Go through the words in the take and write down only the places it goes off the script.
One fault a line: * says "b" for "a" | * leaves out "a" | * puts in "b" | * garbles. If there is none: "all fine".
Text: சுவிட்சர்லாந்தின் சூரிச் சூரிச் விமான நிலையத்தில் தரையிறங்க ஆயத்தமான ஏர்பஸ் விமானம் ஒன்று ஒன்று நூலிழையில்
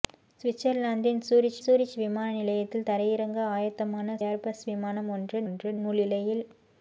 all fine